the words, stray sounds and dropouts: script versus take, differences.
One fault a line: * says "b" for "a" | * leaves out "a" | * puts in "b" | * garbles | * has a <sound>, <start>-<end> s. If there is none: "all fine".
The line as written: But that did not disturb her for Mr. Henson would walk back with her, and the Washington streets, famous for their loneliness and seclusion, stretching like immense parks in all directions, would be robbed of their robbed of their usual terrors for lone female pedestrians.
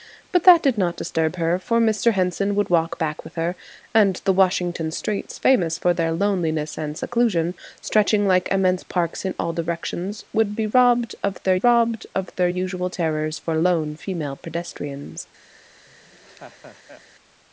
* has a laugh, 15.9-17.0 s